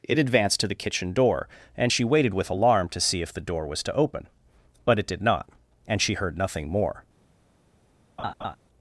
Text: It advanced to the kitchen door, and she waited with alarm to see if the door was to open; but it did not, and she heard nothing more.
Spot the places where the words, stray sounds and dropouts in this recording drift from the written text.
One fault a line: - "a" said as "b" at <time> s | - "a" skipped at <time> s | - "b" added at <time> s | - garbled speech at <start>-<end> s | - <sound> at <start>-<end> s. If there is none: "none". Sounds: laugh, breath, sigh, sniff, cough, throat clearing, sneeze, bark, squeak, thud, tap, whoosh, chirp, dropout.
- laugh at 8.2-8.6 s